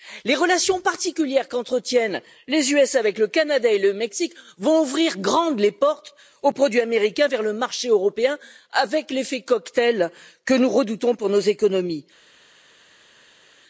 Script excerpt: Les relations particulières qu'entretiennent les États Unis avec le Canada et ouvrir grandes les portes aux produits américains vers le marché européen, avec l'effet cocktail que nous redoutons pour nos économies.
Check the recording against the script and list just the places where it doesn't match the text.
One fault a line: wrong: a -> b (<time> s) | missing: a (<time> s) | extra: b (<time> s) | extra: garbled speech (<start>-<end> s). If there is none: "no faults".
extra: le Mexique vont (3.8 s)